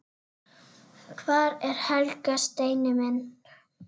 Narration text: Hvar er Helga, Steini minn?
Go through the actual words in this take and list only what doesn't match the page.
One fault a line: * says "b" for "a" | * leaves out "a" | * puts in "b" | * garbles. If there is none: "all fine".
all fine